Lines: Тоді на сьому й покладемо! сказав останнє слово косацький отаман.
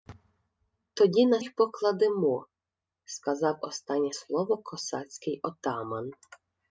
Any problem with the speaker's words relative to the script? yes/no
yes